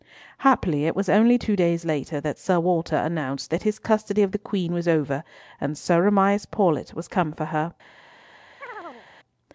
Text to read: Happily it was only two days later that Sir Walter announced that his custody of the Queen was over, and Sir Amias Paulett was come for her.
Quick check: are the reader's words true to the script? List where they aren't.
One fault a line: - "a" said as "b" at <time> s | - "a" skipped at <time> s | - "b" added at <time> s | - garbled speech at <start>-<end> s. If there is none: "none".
none